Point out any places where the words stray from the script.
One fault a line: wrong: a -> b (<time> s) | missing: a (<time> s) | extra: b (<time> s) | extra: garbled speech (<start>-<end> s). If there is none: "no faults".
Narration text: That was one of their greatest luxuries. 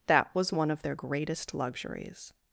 no faults